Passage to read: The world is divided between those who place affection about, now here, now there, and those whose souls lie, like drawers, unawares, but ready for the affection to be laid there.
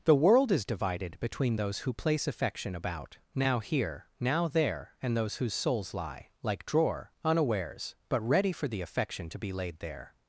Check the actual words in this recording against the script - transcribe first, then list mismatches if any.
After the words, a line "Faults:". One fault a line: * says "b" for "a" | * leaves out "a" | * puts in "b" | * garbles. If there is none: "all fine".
The world is divided between those who place affection about, now here, now there, and those whose souls lie, like drawer, unawares, but ready for the affection to be laid there.
Faults:
* says "drawer" for "drawers"